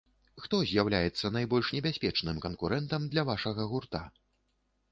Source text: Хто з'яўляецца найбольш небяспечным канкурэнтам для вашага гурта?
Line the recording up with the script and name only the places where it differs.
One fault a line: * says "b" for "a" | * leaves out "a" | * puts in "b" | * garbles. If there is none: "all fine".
all fine